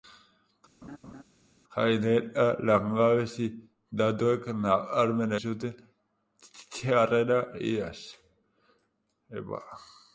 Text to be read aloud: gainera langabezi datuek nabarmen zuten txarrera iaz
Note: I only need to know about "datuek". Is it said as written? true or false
true